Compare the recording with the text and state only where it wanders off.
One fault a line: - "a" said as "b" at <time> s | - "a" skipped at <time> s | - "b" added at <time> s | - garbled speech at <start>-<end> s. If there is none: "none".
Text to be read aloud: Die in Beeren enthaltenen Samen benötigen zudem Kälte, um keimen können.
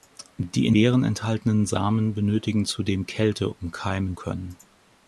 none